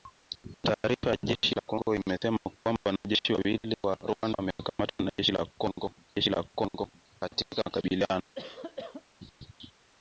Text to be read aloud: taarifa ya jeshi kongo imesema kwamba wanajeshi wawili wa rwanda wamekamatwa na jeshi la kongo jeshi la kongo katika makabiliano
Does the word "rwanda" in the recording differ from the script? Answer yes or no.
no